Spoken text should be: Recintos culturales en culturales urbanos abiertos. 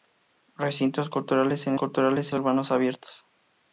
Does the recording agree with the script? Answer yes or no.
yes